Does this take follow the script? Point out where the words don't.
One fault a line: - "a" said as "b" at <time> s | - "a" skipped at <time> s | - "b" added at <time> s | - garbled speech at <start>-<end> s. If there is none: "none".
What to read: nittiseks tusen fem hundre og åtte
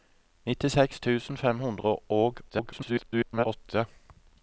- garbled speech at 2.5-3.5 s